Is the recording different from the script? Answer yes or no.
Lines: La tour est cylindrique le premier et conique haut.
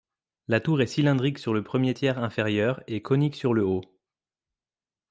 yes